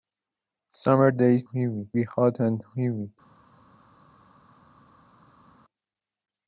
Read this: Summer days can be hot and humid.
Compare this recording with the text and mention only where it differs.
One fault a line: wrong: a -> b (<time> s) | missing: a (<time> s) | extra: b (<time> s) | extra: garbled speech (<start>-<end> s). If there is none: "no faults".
wrong: can -> humid (1.5 s)